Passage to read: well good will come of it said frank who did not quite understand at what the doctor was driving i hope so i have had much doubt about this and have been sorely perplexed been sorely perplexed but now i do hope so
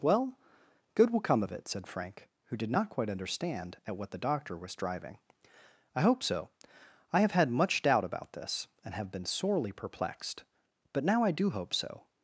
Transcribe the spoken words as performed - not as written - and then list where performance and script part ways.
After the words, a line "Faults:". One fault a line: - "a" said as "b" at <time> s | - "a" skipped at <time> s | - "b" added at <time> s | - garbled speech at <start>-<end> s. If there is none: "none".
well good will come of it said frank who did not quite understand at what the doctor was driving i hope so i have had much doubt about this and have been sorely perplexed but now i do hope so
Faults:
- "been sorely perplexed" skipped at 10.4 s